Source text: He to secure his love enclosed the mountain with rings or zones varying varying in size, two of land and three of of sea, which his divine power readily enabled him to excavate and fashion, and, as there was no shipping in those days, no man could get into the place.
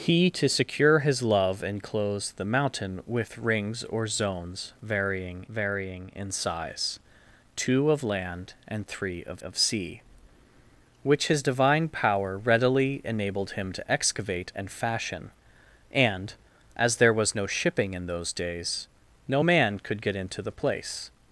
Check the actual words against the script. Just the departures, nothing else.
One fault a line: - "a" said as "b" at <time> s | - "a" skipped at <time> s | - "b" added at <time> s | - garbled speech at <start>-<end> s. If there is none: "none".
none